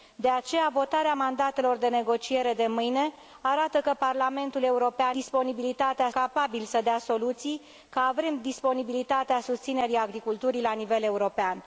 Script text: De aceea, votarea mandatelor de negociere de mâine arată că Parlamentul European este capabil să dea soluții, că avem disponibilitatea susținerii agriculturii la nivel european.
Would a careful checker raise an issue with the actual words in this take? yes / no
yes